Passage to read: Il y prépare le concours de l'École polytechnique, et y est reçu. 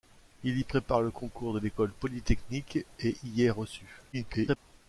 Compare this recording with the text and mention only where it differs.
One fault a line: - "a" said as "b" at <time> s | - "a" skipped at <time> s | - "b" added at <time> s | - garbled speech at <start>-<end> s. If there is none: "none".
- garbled speech at 4.1-4.6 s